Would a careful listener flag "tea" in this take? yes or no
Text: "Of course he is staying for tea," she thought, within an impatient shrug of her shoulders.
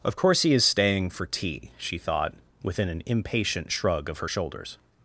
no